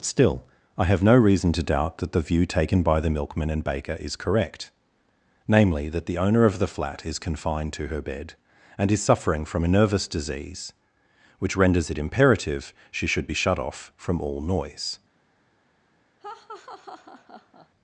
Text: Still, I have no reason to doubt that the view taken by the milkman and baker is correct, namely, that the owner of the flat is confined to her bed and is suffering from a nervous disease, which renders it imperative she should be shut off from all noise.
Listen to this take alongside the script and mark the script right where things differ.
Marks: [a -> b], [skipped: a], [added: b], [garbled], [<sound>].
Still, I have no reason to doubt that the view taken by the milkman and baker is correct, namely, that the owner of the flat is confined to her bed and is suffering from a nervous disease, which renders it imperative she should be shut off from all noise. [laugh]